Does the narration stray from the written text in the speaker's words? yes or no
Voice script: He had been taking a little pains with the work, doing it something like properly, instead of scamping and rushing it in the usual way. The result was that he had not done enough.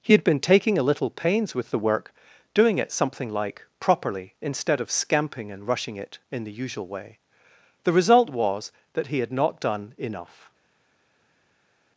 no